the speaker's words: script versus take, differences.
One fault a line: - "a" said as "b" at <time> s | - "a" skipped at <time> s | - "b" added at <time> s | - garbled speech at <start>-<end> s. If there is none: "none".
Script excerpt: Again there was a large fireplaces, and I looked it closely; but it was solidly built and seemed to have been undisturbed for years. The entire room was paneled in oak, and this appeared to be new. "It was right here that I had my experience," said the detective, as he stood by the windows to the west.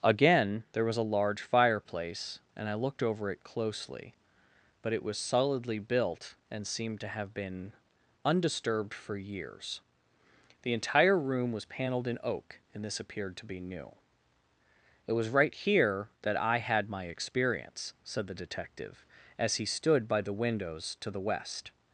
- "fireplaces" said as "fireplace" at 1.4 s
- "over" added at 3.0 s